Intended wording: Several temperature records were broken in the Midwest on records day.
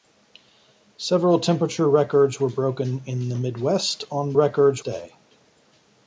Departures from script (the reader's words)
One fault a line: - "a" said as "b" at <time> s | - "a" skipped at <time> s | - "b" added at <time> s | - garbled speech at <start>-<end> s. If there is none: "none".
none